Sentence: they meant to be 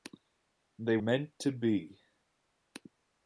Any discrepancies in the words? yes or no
no